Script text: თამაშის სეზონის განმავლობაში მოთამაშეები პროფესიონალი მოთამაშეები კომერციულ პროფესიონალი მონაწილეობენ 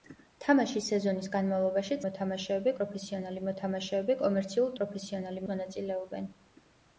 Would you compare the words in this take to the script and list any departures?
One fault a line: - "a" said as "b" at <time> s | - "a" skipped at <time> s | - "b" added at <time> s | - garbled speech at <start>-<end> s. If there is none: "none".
none